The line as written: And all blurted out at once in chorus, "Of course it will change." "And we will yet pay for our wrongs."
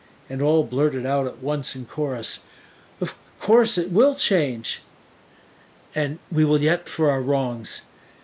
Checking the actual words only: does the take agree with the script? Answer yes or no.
no